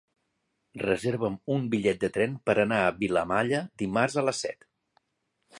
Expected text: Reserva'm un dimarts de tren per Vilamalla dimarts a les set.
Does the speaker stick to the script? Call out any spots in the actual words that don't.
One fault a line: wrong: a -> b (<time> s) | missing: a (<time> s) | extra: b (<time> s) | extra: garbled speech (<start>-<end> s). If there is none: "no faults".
wrong: dimarts -> bitllet (1.8 s)
extra: anar a (2.6 s)